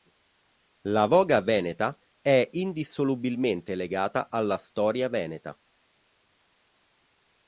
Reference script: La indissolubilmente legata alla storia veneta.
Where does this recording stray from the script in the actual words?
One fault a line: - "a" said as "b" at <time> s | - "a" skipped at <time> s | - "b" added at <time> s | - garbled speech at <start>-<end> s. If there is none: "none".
- "voga veneta è" added at 1.0 s